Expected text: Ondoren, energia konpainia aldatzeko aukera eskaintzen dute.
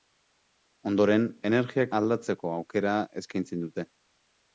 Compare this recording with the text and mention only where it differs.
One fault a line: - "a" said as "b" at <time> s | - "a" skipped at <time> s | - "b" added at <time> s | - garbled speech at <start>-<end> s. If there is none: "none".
- "konpainia" skipped at 1.9 s